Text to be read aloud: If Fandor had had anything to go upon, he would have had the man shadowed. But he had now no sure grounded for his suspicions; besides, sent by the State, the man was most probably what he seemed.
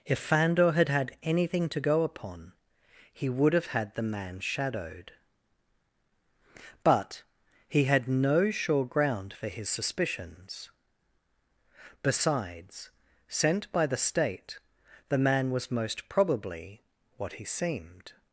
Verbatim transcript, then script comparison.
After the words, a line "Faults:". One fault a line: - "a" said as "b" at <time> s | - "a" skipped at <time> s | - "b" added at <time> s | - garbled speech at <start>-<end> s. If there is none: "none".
If Fandor had had anything to go upon, he would have had the man shadowed. But he had no sure ground for his suspicions; besides, sent by the State, the man was most probably what he seemed.
Faults:
- "now" skipped at 8.1 s
- "grounded" said as "ground" at 8.8 s